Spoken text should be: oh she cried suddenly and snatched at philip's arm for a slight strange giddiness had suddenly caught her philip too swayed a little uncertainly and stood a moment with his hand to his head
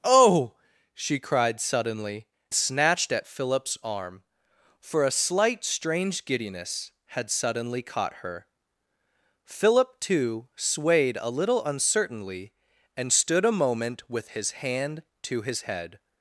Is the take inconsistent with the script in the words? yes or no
yes